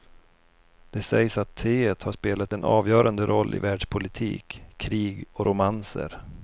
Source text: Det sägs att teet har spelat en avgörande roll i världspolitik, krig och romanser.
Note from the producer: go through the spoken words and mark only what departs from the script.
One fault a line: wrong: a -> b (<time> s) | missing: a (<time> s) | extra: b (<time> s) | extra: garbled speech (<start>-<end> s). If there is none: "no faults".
no faults